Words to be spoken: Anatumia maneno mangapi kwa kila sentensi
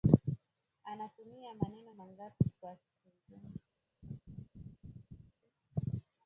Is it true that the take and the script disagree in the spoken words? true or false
true